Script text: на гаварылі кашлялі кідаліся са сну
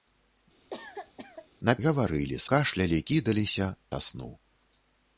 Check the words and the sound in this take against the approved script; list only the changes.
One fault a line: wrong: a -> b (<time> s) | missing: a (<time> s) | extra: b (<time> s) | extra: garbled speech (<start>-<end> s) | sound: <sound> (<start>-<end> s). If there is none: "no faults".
sound: cough (0.7-1.5 s)